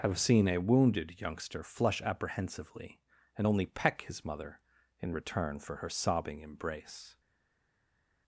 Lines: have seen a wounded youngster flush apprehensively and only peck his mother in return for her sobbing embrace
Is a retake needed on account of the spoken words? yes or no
no